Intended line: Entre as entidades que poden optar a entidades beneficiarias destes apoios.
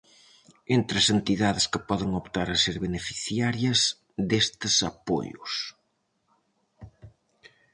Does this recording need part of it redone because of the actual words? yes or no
yes